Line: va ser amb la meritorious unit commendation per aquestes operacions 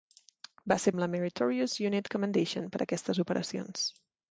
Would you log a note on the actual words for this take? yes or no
no